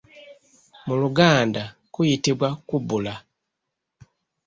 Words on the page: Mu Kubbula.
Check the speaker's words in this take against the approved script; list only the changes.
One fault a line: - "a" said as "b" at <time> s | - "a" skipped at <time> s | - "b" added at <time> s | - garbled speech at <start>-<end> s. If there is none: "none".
- "Luganda kuyitibwa" added at 1.0 s